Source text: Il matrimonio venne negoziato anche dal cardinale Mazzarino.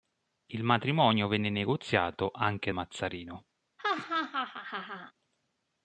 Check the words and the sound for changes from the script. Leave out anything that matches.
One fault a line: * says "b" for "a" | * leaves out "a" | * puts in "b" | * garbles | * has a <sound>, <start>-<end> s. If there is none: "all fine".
* leaves out "dal cardinale"
* has a laugh, 3.8-5.1 s